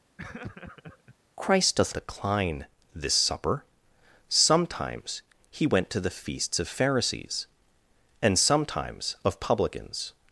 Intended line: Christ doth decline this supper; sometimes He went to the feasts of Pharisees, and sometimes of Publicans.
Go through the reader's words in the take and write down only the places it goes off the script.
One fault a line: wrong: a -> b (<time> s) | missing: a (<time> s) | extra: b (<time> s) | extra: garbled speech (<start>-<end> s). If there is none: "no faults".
no faults